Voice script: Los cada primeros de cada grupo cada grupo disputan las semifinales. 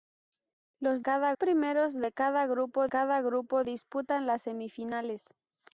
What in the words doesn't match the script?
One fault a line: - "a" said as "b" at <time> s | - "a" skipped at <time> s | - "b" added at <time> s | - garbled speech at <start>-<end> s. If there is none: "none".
none